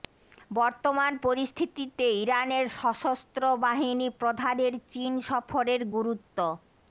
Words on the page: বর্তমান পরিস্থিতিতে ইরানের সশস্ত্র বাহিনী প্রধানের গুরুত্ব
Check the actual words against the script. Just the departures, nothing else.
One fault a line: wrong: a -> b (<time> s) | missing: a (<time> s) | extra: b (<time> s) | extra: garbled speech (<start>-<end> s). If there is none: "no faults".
extra: চীন সফরের (4.9 s)